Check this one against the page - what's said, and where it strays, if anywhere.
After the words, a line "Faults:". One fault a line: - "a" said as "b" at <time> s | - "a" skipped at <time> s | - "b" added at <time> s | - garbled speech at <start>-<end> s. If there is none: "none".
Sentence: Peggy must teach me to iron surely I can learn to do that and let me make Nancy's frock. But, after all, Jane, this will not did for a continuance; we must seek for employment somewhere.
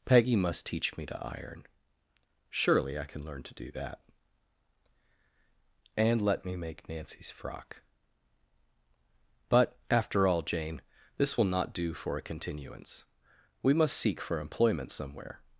Peggy must teach me to iron surely I can learn to do that and let me make Nancy's frock. But, after all, Jane, this will not do for a continuance; we must seek for employment somewhere.
Faults:
- "did" said as "do" at 11.7 s